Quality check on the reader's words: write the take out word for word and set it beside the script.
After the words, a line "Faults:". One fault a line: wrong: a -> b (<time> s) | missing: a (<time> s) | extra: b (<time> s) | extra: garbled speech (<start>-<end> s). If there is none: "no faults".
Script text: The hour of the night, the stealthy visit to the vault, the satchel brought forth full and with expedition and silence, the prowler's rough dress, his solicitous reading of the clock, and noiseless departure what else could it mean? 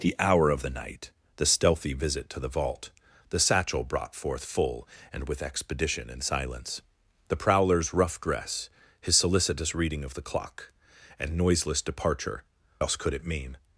The hour of the night, the stealthy visit to the vault, the satchel brought forth full and with expedition and silence, the prowler's rough dress, his solicitous reading of the clock, and noiseless departure else could it mean?
Faults:
missing: what (12.4 s)